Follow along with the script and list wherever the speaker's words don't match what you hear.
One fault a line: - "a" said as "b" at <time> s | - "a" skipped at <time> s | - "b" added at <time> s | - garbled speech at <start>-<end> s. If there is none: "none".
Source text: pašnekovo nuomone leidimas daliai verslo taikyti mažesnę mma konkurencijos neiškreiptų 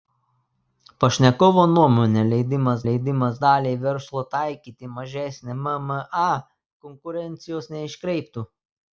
- "leidimas" added at 2.8 s